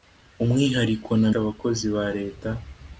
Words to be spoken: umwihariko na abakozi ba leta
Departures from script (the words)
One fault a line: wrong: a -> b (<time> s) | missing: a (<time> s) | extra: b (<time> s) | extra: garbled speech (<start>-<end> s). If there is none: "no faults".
no faults